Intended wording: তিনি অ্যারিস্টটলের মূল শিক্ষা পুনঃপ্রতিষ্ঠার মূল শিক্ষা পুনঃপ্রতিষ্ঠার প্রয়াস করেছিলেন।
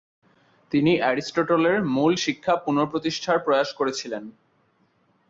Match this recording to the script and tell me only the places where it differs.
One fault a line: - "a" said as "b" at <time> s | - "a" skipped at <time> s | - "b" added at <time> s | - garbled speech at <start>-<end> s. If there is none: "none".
- "মূল শিক্ষা পুনঃপ্রতিষ্ঠার" skipped at 3.4 s